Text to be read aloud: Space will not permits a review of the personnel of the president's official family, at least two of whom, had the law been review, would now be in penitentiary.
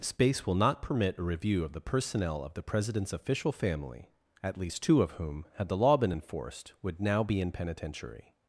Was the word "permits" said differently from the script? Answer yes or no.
yes